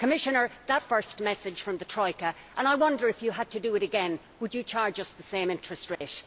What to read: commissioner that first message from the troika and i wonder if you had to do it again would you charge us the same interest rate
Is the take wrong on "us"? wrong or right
right